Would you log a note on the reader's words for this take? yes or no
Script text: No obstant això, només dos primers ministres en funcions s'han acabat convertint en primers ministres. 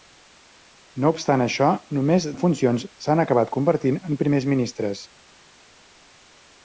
yes